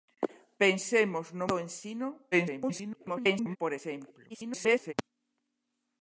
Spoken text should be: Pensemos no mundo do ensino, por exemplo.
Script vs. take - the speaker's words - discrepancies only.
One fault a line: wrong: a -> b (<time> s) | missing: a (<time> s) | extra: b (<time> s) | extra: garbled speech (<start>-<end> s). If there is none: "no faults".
missing: mundo (1.5 s)
extra: garbled speech (2.3-3.6 s)
extra: garbled speech (4.3-4.9 s)